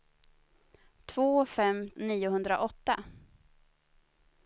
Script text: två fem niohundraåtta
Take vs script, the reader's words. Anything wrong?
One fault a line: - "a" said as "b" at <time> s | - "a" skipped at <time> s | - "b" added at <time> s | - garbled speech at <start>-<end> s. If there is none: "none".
none